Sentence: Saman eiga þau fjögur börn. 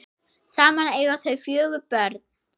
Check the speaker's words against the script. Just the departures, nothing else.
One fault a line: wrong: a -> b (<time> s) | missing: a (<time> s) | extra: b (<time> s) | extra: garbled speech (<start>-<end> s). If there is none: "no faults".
no faults